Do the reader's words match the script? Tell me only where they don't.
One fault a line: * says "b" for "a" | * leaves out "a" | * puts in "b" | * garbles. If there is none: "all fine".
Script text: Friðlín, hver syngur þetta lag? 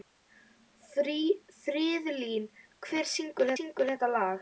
* puts in "syngur"